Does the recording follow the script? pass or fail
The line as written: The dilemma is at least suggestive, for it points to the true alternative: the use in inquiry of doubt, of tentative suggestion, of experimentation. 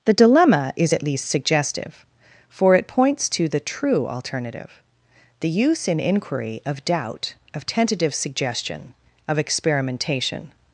pass